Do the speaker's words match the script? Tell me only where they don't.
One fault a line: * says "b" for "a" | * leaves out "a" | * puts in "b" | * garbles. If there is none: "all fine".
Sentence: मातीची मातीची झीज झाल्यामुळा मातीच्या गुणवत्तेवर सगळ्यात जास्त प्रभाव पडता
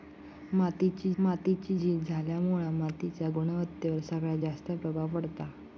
all fine